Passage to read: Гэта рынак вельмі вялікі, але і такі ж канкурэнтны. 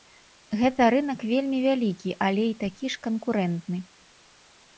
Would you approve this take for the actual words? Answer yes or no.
yes